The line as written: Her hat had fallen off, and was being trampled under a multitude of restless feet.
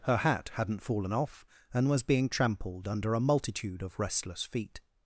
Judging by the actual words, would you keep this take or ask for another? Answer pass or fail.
fail